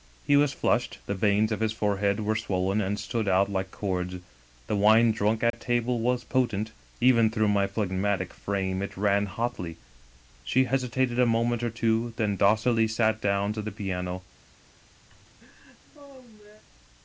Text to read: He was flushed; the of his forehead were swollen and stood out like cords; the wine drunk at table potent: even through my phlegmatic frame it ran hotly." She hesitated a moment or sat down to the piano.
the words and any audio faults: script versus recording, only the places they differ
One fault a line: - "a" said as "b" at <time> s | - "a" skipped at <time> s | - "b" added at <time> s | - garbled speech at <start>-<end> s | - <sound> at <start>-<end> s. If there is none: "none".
- "veins" added at 1.1 s
- dropout at 5.5-5.5 s
- "was" added at 6.0 s
- "two then docilely" added at 11.7 s
- laugh at 15.1-16.6 s